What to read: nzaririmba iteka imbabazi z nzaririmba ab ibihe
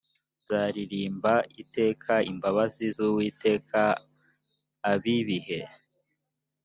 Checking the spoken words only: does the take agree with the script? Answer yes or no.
no